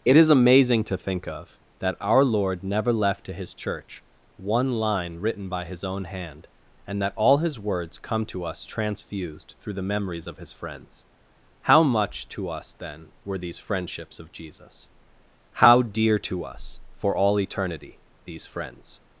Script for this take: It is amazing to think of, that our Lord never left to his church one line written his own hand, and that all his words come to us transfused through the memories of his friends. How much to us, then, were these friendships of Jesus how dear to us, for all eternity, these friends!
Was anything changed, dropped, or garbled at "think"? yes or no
no